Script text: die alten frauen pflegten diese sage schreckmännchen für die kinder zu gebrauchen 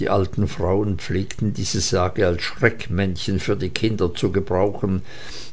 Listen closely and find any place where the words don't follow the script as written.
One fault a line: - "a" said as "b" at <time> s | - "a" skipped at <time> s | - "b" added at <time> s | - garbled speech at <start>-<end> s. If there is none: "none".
- "als" added at 2.2 s